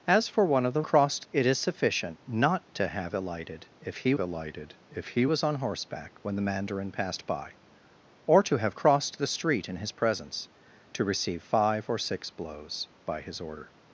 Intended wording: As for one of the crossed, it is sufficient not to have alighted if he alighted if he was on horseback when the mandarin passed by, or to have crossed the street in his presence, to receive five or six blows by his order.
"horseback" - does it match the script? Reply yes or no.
yes